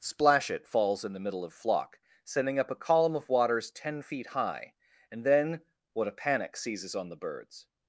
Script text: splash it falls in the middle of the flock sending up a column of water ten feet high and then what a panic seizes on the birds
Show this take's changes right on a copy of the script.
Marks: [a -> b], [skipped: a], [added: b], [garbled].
splash it falls in the middle of [skipped: the] flock sending up a column of [water -> waters] ten feet high and then what a panic seizes on the birds